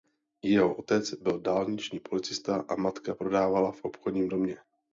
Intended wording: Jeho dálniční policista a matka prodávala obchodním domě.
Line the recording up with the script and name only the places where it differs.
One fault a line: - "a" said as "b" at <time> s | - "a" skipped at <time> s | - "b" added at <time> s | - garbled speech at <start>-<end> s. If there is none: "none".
- "otec byl" added at 0.8 s
- "v" added at 3.7 s